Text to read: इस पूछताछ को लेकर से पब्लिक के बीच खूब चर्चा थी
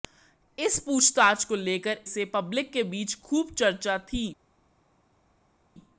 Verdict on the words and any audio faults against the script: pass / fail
pass